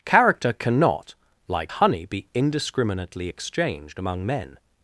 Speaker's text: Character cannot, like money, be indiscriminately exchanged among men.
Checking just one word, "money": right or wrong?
wrong